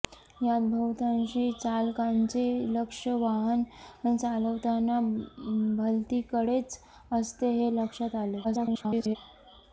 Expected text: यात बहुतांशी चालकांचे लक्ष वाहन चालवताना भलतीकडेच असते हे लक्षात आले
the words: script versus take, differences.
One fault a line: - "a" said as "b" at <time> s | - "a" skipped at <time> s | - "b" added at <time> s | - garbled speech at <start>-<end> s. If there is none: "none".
- garbled speech at 8.4-9.2 s